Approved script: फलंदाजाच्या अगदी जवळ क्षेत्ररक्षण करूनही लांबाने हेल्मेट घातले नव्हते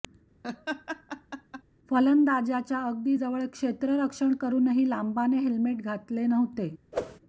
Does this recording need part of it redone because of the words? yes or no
no